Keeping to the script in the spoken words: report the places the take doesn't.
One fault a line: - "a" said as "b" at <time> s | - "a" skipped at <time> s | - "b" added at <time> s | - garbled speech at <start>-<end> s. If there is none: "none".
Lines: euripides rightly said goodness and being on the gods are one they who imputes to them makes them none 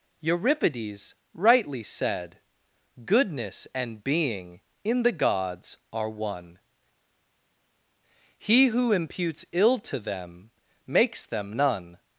- "on" said as "in" at 4.8 s
- "they" said as "he" at 8.4 s
- "ill" added at 9.5 s